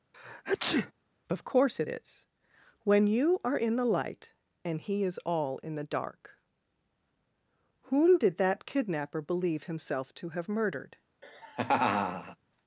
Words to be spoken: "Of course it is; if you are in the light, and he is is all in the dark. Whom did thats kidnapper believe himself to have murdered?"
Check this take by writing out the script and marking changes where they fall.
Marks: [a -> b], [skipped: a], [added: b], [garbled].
"Of course it is; [if -> when] you are in the light, and he is [skipped: is] all in the dark. Whom did [thats -> that] kidnapper believe himself to have murdered?"